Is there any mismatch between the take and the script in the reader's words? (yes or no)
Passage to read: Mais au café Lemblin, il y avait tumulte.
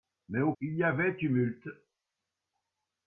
yes